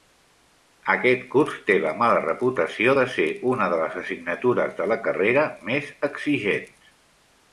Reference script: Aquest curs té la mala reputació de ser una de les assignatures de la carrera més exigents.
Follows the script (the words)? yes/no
yes